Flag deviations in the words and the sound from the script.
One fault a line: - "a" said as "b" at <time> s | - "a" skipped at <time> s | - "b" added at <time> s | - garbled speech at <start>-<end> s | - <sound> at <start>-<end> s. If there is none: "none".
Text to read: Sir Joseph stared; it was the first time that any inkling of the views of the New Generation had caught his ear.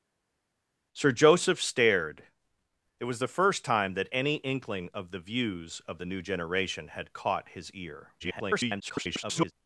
- garbled speech at 8.2-9.5 s